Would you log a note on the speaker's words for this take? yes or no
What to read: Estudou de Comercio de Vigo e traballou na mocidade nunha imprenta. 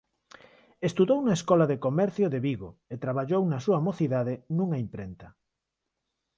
yes